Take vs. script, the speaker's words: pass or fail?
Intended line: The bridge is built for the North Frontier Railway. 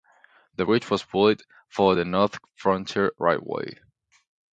fail